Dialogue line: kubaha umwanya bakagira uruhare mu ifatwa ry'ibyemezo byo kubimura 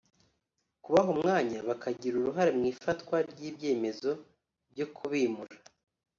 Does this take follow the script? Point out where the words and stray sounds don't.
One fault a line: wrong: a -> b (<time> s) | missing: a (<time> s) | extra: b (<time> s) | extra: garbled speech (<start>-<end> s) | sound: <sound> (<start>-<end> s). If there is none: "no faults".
no faults